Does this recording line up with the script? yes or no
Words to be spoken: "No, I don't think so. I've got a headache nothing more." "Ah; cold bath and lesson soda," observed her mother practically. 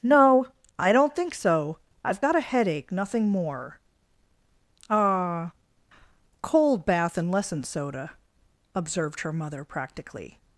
yes